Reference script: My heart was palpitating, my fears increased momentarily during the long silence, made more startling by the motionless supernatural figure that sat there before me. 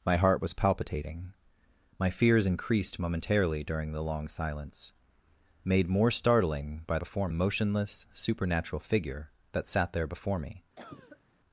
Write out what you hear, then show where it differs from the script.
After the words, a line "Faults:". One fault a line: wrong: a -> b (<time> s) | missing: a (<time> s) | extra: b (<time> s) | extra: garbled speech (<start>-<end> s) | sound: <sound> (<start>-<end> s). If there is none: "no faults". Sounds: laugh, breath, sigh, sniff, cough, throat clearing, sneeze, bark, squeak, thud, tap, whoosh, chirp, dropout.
My heart was palpitating, my fears increased momentarily during the long silence, made more startling by before motionless supernatural figure that sat there before me.
Faults:
wrong: the -> before (7.0 s)
sound: cough (10.8-11.2 s)